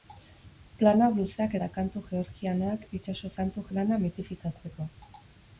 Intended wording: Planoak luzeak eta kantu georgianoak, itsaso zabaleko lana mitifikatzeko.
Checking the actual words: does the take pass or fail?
fail